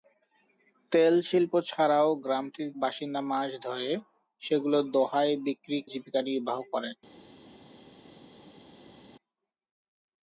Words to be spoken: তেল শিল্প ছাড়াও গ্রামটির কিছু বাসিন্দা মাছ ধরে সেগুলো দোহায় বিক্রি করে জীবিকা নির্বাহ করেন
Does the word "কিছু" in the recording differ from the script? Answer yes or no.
yes